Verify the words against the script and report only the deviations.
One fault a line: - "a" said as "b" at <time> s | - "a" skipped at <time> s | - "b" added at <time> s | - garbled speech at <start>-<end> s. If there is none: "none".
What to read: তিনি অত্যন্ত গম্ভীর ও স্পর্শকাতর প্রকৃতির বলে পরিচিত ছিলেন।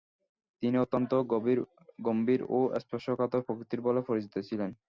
none